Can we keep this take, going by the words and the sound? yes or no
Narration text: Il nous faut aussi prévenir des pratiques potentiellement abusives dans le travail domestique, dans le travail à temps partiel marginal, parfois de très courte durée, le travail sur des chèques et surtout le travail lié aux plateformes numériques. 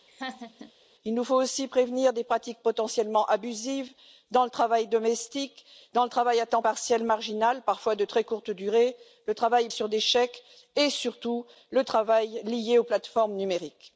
no